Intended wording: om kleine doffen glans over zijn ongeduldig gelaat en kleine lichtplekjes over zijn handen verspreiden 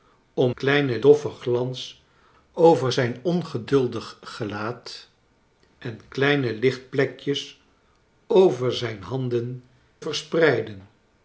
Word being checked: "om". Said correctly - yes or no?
yes